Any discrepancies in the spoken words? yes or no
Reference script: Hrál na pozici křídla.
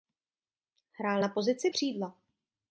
no